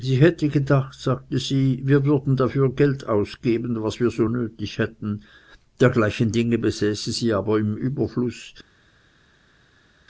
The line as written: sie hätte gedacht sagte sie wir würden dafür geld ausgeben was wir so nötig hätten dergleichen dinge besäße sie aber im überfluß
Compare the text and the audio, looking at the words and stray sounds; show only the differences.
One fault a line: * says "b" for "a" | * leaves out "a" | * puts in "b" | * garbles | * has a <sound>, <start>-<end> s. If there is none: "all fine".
all fine